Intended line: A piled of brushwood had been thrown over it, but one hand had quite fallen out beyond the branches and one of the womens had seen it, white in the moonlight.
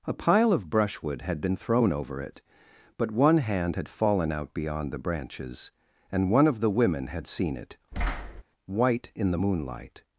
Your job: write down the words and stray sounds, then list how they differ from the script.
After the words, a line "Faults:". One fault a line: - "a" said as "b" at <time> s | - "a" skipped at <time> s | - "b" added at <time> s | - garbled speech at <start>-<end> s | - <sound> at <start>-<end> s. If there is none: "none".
A pile of brushwood had been thrown over it, but one hand had fallen out beyond the branches and one of the women had seen it, white in the moonlight.
Faults:
- "piled" said as "pile" at 0.1 s
- "quite" skipped at 3.9 s
- "womens" said as "women" at 6.7 s
- thud at 7.9-8.4 s